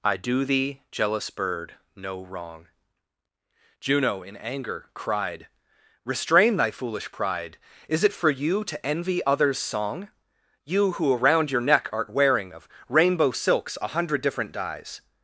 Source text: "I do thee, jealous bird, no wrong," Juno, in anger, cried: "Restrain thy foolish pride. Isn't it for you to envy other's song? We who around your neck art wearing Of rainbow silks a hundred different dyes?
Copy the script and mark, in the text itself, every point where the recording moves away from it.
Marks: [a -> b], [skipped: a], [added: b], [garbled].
"I do thee, jealous bird, no wrong," Juno, in anger, cried: "Restrain thy foolish pride. [Isn't -> Is] it for you to envy other's song? [We -> You] who around your neck art wearing Of rainbow silks a hundred different dyes?